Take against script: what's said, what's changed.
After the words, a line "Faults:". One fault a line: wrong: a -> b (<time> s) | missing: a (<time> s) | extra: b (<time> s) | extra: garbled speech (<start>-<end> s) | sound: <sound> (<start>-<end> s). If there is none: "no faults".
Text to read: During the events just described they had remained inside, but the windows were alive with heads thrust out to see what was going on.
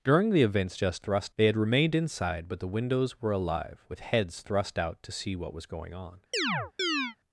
During the events just thrust they had remained inside, but the windows were alive with heads thrust out to see what was going on.
Faults:
wrong: described -> thrust (1.0 s)
sound: chirp (6.3-7.2 s)